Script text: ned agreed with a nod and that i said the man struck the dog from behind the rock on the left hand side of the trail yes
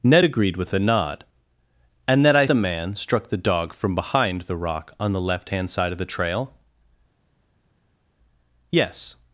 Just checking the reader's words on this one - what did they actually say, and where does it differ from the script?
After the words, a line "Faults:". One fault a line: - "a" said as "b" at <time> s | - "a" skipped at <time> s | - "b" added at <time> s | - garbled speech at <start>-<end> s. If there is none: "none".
ned agreed with a nod and that i the man struck the dog from behind the rock on the left hand side of the trail yes
Faults:
- "said" skipped at 2.4 s